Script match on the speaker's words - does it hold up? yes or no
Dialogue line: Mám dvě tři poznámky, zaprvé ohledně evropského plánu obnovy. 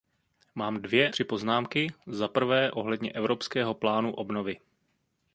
yes